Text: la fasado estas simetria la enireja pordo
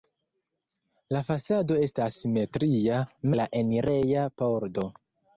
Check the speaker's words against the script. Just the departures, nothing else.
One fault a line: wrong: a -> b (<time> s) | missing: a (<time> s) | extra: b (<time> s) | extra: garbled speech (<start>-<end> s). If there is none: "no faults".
no faults